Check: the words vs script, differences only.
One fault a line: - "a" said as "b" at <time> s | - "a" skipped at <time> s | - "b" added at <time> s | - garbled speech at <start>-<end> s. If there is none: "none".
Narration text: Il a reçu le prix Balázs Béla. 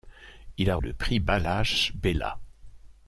- "reçu" skipped at 0.8 s